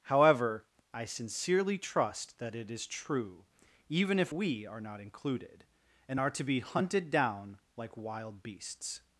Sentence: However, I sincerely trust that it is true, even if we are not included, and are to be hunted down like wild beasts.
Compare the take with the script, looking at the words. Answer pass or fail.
pass